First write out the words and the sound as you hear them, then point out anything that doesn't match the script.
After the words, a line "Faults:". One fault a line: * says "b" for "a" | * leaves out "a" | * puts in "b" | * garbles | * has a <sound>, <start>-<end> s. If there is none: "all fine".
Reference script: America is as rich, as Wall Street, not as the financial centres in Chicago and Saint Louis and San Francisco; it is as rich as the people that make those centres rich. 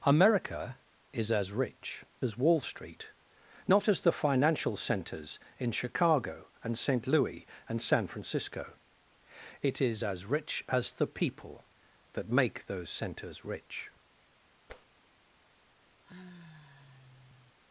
America is as rich, as Wall Street, not as the financial centres in Chicago and Saint Louis and San Francisco; it is as rich as the people that make those centres rich.
Faults:
* has a tap, 14.7-14.9 s
* has a sigh, 16.0-17.6 s